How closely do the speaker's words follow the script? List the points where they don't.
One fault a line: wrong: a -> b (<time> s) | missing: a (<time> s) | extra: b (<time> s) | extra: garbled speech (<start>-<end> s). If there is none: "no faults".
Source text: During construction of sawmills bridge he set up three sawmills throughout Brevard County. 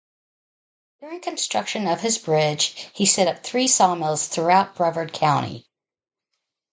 wrong: sawmills -> his (2.0 s)